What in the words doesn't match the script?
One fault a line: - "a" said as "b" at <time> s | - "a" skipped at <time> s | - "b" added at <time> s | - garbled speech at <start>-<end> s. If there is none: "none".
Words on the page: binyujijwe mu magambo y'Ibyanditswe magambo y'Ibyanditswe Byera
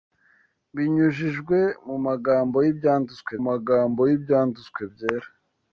none